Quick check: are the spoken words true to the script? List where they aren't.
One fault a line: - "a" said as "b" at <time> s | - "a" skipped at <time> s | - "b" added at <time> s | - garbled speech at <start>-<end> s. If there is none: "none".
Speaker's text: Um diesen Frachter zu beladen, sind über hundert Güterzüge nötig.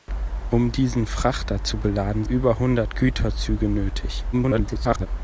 - "sind" skipped at 2.2 s
- garbled speech at 4.3-5.1 s